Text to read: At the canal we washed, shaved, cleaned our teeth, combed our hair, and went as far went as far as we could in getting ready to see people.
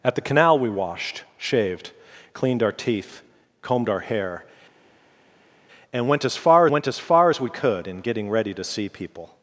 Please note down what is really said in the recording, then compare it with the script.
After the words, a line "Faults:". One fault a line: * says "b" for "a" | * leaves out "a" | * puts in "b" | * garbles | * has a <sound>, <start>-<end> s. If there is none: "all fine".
At the canal we washed, shaved, cleaned our teeth, combed our hair, and went as far went as far as we could in getting ready to see people.
Faults:
all fine